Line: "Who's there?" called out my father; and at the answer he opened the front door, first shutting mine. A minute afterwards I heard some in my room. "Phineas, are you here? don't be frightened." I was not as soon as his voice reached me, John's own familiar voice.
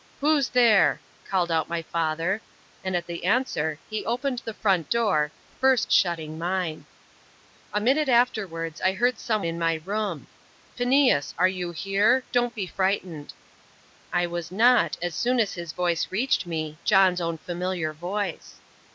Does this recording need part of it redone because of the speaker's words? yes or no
no